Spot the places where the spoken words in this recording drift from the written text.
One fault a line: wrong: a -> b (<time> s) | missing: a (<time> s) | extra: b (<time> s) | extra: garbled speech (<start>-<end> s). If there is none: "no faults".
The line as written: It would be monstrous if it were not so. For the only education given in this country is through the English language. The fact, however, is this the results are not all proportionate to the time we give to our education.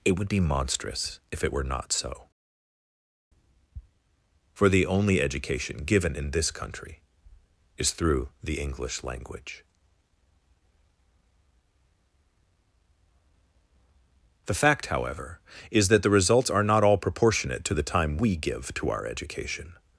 wrong: this -> that (15.9 s)